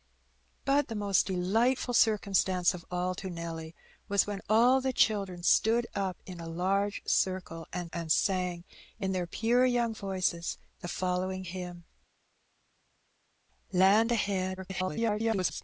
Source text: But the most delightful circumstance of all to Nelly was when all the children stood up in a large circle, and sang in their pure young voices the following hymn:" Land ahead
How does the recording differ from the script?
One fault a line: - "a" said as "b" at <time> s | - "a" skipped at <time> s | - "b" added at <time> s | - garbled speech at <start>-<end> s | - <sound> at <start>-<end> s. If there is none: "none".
- "and" added at 7.9 s
- garbled speech at 14.6-15.6 s